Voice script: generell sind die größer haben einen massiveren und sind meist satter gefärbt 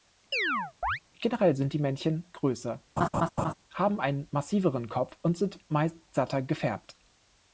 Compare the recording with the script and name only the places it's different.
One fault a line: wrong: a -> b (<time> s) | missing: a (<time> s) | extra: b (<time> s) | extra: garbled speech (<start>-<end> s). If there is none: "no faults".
extra: männchen (1.8 s)
extra: kopf (4.9 s)